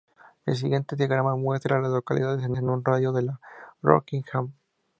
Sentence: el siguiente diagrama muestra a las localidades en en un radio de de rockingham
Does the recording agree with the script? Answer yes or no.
yes